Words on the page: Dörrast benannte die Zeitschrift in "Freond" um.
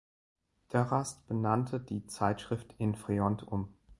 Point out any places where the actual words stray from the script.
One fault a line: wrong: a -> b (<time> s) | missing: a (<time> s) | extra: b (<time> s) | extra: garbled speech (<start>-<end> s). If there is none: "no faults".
no faults